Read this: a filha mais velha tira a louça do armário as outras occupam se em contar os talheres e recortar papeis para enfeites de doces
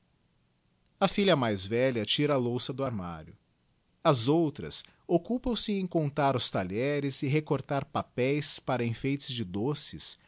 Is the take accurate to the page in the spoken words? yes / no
yes